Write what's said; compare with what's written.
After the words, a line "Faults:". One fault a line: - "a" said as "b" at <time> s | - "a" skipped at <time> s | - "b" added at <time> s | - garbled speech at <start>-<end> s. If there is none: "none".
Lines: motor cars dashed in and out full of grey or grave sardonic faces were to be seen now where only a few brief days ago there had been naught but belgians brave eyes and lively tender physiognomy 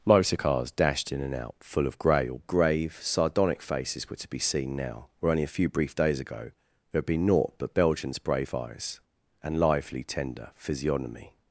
motor cars dashed in and out full of grey or grave sardonic faces were to be seen now where only a few brief days ago there had been naught but belgians brave eyes and lively tender physiognomy
Faults:
none